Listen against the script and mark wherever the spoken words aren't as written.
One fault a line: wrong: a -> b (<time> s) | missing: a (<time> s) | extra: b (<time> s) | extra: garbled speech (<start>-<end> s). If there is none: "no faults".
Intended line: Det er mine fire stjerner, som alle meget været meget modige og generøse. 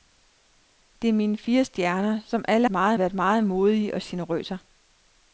no faults